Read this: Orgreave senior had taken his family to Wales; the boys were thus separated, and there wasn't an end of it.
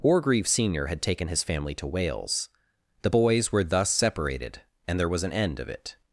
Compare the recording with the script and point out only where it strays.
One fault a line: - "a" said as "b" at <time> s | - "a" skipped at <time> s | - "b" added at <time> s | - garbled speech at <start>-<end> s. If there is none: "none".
- "wasn't" said as "was" at 5.1 s